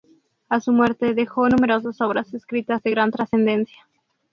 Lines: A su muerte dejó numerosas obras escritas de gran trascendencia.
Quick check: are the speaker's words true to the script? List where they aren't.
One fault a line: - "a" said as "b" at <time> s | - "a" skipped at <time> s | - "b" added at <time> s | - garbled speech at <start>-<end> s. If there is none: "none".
none